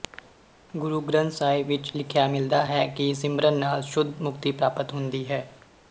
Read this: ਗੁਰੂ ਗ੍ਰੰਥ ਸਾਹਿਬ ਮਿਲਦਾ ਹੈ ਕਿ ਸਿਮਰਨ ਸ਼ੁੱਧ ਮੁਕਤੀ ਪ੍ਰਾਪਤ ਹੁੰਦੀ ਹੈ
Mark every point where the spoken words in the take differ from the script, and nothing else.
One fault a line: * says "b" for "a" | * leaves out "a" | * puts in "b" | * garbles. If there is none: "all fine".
* puts in "ਵਿੱਚ ਲਿਖਿਆ"
* puts in "ਨਾਲ"